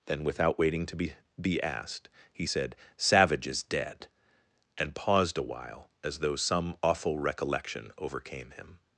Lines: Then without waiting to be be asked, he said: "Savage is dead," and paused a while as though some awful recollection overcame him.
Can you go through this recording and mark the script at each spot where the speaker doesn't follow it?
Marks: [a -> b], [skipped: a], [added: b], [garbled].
Then without waiting to be be asked, he said: "Savage is dead," and paused a while as though some awful recollection overcame him.